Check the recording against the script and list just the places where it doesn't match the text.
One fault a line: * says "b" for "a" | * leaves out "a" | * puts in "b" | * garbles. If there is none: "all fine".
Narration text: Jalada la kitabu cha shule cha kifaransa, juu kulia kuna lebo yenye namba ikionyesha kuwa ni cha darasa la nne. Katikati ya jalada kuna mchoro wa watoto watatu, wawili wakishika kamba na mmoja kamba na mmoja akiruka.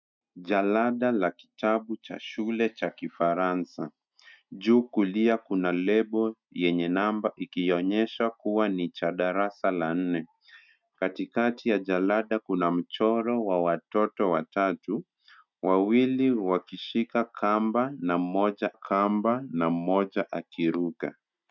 all fine